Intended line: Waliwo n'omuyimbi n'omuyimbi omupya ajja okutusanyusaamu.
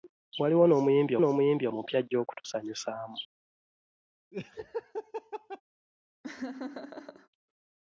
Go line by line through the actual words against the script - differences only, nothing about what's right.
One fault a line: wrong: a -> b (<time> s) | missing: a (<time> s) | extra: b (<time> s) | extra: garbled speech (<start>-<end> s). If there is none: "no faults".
no faults